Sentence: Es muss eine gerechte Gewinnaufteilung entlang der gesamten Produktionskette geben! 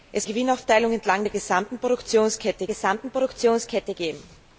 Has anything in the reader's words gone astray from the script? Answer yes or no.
yes